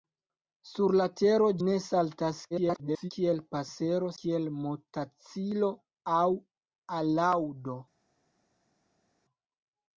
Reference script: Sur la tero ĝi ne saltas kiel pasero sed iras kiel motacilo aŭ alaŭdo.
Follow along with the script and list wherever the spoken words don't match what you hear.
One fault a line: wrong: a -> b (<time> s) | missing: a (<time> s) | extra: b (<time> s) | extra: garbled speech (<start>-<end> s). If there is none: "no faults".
missing: ĝi (1.5 s)
extra: garbled speech (2.5-3.1 s)
missing: sed iras (4.1 s)